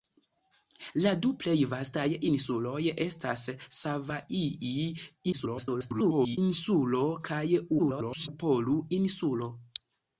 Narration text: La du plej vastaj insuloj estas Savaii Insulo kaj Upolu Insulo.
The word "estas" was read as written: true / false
true